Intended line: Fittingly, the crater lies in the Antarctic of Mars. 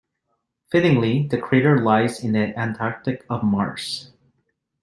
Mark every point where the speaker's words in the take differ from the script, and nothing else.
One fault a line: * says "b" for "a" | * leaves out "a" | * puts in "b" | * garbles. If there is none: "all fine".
all fine